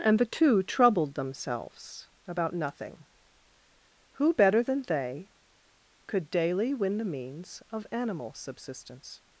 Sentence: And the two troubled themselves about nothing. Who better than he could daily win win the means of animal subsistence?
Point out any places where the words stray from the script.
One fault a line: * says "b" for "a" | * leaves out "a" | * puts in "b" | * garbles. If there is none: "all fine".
* says "they" for "he"
* leaves out "win"